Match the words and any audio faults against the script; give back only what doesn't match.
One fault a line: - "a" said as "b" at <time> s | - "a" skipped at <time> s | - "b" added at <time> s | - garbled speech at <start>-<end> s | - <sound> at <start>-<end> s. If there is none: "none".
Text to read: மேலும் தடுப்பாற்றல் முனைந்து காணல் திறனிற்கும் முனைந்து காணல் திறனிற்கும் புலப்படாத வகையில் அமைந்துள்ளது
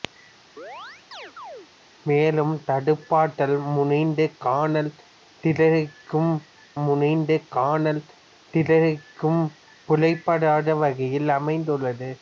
- chirp at 0.6-1.7 s